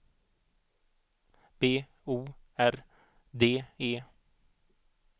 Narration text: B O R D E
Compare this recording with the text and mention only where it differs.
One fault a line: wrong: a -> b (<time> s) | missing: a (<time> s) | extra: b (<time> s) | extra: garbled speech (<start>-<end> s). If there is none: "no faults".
no faults